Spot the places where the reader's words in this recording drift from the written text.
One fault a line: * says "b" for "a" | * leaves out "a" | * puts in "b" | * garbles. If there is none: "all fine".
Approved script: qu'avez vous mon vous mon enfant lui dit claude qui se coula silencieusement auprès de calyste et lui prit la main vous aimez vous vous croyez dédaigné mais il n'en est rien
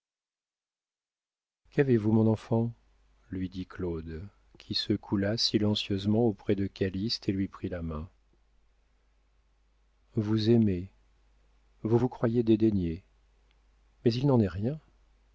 * leaves out "vous mon"